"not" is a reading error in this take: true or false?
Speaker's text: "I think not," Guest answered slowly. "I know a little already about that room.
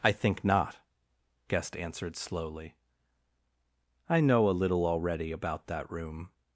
false